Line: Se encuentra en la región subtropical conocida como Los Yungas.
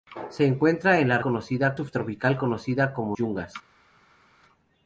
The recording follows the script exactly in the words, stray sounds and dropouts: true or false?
false